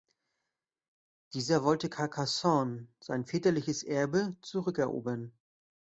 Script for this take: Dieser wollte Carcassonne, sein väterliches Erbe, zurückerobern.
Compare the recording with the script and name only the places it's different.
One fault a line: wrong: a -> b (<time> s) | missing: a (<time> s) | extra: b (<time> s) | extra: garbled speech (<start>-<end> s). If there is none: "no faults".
no faults